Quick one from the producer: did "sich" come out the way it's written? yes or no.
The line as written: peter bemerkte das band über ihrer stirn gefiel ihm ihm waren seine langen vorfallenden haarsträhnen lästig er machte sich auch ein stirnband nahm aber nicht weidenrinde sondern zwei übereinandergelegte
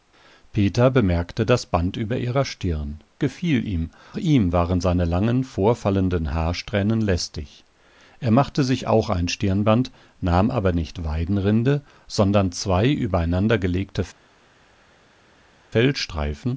yes